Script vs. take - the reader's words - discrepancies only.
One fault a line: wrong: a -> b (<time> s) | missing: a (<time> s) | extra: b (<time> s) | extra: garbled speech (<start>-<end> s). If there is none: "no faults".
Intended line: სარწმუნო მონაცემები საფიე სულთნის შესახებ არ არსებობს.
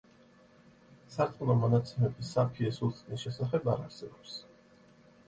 no faults